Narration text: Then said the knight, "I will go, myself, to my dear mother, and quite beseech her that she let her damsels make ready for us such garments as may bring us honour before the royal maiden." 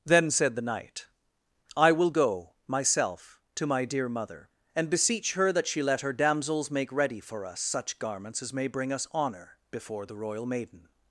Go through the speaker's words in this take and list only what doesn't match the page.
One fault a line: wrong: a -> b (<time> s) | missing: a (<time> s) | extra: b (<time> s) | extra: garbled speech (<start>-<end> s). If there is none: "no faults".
missing: quite (4.9 s)